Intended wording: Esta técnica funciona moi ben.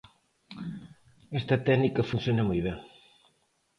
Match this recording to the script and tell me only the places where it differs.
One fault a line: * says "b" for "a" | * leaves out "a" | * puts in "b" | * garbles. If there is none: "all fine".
all fine